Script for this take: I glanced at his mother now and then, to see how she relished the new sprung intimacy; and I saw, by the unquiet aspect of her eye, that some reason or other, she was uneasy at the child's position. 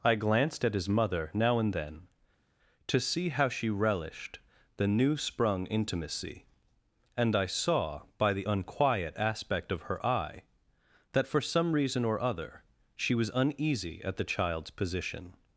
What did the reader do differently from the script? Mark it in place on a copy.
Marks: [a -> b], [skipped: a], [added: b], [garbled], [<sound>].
I glanced at his mother now and then, to see how she relished the new sprung intimacy; and I saw, by the unquiet aspect of her eye, that [added: for] some reason or other, she was uneasy at the child's position.